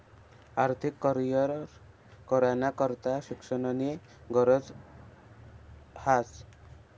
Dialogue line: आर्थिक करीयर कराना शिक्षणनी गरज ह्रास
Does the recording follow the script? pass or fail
fail